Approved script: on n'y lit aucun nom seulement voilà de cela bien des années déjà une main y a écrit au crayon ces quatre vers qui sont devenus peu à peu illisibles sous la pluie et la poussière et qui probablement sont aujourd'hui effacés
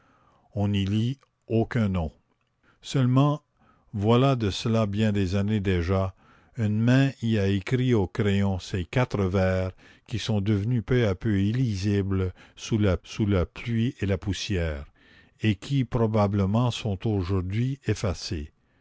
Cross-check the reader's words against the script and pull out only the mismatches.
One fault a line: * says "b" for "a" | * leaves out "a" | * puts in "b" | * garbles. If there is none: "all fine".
* puts in "sous la"